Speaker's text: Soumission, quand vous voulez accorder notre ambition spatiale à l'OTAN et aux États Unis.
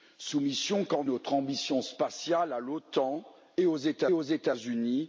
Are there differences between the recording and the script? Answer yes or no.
yes